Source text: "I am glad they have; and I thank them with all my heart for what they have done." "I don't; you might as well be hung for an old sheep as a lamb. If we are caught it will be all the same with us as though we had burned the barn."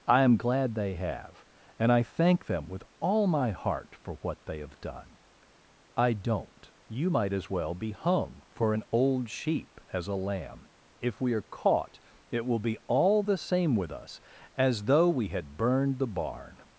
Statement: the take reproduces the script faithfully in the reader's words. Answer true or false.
true